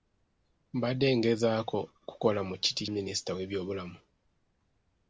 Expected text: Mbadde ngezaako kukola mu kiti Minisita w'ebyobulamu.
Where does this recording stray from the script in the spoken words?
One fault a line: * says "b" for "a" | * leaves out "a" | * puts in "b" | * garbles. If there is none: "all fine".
all fine